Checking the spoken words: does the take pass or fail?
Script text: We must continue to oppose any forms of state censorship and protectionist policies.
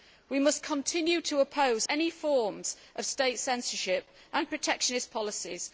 pass